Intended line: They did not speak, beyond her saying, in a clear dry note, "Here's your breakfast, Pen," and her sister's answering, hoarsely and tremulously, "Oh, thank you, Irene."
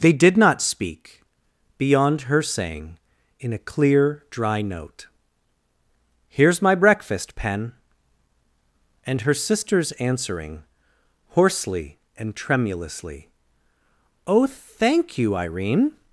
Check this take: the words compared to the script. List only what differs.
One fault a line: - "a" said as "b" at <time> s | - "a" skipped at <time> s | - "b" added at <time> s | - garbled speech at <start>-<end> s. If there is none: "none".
- "your" said as "my" at 6.6 s